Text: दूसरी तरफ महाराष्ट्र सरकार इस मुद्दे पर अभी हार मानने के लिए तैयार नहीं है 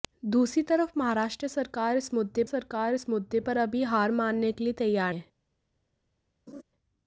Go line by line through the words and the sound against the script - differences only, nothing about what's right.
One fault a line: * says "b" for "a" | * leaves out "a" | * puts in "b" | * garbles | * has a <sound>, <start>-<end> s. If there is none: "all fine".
* puts in "सरकार इस मुद्दे"
* leaves out "नहीं"
* has a laugh, 6.5-6.6 s